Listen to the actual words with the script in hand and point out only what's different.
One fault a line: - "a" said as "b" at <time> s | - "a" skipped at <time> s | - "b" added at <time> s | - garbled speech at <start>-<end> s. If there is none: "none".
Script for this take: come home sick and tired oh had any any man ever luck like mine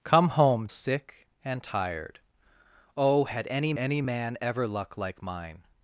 none